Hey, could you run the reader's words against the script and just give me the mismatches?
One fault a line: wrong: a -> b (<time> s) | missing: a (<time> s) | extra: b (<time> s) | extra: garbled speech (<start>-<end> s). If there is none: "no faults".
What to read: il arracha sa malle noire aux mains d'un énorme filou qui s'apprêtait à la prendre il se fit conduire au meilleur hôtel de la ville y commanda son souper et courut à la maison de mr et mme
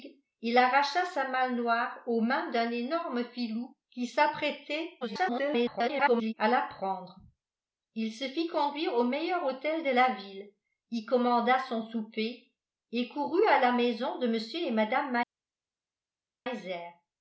extra: garbled speech (5.0-6.3 s)